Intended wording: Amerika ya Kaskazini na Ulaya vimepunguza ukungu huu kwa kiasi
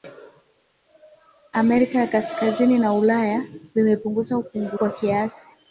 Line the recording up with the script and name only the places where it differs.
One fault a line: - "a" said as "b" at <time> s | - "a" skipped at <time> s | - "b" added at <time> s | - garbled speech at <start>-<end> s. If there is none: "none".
- "huu" skipped at 4.8 s